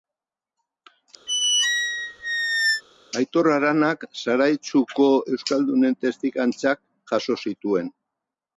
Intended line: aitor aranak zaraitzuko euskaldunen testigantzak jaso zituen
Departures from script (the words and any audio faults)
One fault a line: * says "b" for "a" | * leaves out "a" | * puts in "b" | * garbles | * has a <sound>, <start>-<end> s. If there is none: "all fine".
* has a squeak, 1.3-2.8 s